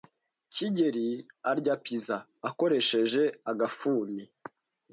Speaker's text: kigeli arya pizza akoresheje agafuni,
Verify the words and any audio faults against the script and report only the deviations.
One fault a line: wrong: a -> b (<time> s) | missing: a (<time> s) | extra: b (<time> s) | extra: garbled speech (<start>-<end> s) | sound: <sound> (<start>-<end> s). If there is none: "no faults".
no faults